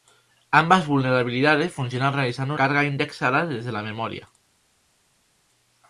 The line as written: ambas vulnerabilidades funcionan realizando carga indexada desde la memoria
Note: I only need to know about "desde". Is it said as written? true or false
true